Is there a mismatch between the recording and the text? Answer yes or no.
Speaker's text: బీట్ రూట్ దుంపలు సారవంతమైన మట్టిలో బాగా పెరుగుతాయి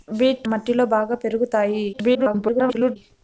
yes